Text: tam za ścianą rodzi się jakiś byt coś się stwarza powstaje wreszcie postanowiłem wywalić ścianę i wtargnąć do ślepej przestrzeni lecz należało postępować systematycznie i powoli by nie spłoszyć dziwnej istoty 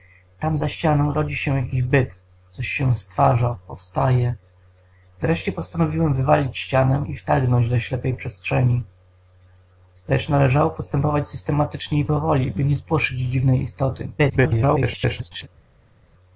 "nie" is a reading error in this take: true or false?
false